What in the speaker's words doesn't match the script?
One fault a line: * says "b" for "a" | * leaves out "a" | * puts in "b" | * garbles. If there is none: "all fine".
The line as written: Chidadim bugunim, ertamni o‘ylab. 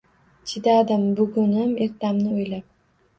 all fine